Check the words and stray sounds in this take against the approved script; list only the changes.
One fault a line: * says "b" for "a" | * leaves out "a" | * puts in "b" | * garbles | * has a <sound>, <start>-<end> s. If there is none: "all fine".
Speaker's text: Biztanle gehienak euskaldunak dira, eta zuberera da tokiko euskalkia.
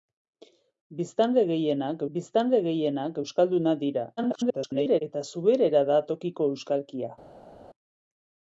* puts in "biztanle gehienak"
* garbles